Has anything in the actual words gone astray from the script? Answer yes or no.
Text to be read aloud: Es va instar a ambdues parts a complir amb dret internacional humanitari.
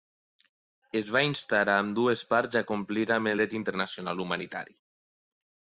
no